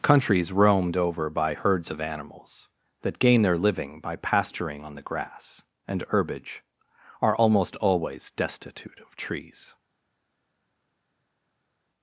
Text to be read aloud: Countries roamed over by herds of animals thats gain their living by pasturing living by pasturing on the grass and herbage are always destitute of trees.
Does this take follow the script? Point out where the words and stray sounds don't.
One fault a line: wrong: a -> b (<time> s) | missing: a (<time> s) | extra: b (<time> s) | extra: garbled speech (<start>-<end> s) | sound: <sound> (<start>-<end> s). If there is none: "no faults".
wrong: thats -> that (3.0 s)
missing: living by pasturing (4.8 s)
extra: almost (7.4 s)